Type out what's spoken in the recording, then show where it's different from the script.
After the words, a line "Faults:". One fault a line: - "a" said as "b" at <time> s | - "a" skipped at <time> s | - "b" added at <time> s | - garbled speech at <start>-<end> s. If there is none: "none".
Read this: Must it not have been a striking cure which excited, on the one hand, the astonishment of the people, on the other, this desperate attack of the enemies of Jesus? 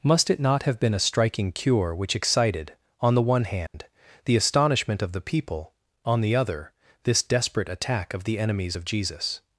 Must it not have been a striking cure which excited, on the one hand, the astonishment of the people, on the other, this desperate attack of the enemies of Jesus?
Faults:
none